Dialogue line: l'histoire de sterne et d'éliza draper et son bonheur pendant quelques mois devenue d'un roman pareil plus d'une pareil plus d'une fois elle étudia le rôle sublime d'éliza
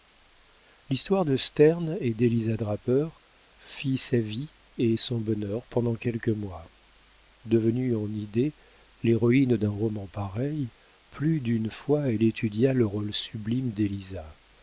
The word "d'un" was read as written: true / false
false